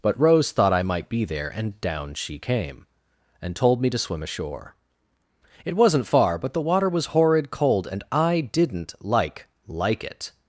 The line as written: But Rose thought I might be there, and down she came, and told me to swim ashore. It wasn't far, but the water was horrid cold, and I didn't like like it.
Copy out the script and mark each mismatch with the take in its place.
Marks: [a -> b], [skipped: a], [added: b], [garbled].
But Rose thought I might be there, and down she came, and told me to swim ashore. It wasn't far, but the water was horrid cold, and I didn't like like it.